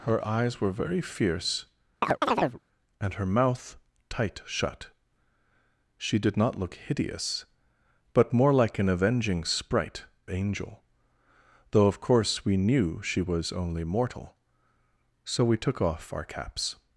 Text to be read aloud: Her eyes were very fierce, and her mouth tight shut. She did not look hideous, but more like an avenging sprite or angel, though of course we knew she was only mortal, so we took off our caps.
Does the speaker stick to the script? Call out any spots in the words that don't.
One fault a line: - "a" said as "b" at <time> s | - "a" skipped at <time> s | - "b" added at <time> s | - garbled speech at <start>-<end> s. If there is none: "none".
- "or" skipped at 10.1 s